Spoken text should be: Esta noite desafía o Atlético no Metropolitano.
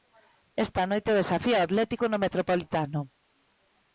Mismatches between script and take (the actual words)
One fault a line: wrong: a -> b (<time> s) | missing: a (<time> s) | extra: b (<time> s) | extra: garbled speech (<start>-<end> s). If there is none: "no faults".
no faults